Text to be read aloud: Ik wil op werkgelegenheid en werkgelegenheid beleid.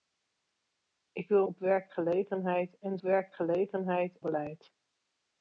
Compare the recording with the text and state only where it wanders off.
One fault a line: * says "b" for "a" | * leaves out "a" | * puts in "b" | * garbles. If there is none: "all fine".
all fine